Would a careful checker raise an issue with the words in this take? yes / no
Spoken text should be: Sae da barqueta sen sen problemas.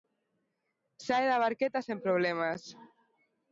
yes